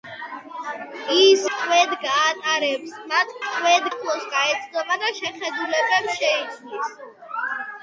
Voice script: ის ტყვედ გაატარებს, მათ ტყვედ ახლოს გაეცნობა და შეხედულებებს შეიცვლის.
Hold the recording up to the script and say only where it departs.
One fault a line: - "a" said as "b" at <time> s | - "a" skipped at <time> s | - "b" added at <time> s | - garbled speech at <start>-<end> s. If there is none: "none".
none